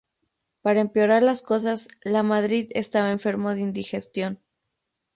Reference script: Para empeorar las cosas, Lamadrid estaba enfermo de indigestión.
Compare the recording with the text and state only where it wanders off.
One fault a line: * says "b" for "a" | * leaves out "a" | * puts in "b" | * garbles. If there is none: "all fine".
all fine